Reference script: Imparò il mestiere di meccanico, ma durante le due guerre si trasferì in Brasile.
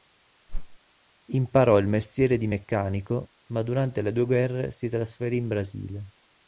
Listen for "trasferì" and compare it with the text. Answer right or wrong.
right